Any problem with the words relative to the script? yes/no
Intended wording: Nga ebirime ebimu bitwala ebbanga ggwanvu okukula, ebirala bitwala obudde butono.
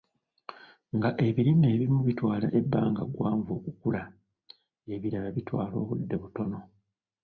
no